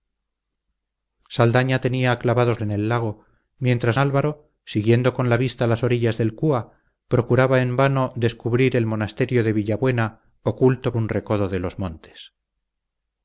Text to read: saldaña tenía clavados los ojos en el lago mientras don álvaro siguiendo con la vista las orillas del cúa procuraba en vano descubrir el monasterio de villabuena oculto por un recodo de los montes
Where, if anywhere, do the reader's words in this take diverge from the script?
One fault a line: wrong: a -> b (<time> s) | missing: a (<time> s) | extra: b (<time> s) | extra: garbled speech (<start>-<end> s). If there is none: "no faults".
missing: los ojos (2.6 s)
missing: don (4.0 s)
missing: por (10.9 s)